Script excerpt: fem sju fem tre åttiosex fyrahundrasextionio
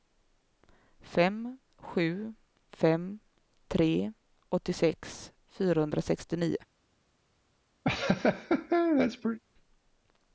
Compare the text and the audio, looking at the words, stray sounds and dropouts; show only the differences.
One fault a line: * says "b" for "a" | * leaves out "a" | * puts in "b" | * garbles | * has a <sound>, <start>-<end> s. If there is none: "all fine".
* has a laugh, 7.8-9.4 s